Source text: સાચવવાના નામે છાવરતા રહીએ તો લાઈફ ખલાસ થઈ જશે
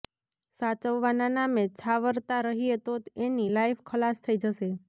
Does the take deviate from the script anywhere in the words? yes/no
yes